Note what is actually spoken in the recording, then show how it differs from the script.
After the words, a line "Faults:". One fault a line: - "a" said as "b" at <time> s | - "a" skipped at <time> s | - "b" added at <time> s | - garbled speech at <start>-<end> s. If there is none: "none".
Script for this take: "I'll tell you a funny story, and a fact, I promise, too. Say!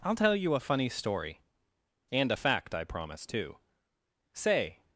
"I'll tell you a funny story, and a fact, I promise, too. Say!
Faults:
none